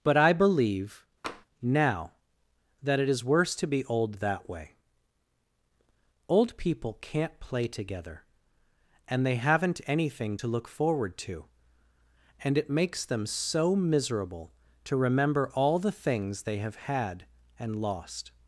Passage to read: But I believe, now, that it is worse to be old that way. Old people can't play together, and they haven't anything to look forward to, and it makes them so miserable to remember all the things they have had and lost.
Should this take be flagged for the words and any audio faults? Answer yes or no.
yes